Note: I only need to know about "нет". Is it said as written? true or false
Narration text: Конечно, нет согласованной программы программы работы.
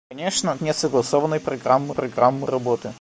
true